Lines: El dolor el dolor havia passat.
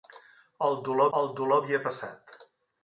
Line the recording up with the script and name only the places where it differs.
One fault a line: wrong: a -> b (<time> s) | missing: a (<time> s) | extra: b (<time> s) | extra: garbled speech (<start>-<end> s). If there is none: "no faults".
no faults